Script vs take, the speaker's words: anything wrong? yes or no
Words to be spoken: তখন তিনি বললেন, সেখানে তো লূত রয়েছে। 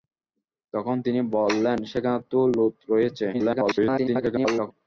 yes